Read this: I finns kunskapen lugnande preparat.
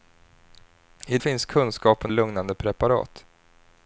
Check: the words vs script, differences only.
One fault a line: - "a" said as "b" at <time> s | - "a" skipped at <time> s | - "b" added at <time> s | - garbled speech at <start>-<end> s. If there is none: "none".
none